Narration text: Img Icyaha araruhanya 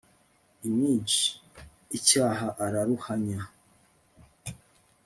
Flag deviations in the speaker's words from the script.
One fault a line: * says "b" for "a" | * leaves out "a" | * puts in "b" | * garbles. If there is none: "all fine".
all fine